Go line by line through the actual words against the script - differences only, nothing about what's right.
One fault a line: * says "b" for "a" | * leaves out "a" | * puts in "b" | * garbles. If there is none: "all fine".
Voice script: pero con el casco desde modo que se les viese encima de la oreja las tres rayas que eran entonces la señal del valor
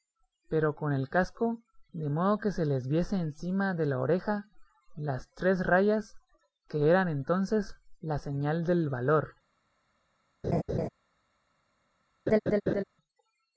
* says "de" for "desde"